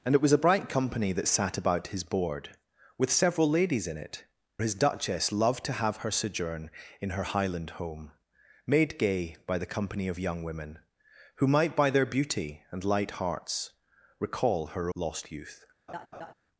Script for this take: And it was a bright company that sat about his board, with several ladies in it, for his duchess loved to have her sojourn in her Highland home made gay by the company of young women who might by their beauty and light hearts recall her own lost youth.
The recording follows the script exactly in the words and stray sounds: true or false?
false